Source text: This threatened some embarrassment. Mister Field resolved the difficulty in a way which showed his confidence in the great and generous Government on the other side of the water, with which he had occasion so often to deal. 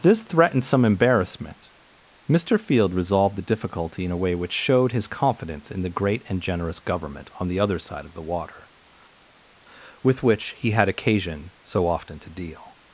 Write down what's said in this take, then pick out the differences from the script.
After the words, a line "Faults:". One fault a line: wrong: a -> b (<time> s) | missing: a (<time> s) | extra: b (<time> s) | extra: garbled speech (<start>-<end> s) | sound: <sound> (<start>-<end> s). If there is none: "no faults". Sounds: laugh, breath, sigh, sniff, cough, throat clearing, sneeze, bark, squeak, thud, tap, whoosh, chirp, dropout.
This threatened some embarrassment. Mister Field resolved the difficulty in a way which showed his confidence in the great and generous Government on the other side of the water, with which he had occasion so often to deal.
Faults:
no faults